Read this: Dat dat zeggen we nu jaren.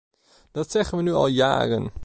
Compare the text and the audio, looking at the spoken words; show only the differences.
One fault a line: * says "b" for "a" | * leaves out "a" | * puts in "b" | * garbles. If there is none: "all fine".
* leaves out "dat"
* puts in "al"